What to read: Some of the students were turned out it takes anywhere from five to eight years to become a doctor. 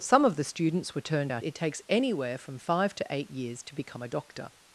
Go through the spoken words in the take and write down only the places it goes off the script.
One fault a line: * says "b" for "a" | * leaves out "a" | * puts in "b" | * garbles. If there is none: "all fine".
all fine